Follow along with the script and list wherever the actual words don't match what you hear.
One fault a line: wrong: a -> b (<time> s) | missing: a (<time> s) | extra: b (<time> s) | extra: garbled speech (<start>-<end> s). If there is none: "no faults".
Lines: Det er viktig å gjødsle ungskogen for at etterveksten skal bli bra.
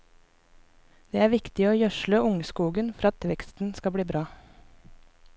missing: at (3.1 s)